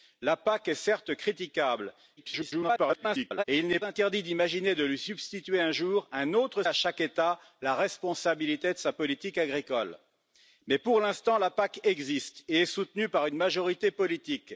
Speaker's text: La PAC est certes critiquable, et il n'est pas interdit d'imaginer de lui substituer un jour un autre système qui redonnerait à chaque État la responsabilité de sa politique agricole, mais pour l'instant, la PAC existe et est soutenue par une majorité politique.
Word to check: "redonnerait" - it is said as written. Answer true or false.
false